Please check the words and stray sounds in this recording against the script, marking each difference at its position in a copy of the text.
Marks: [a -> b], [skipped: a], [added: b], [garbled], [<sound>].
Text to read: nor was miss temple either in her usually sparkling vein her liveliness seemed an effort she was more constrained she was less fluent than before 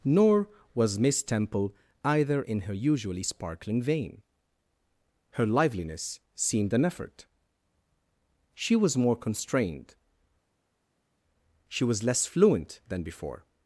nor was miss temple either in her usually sparkling vein her liveliness seemed an effort she was more constrained she was less fluent than before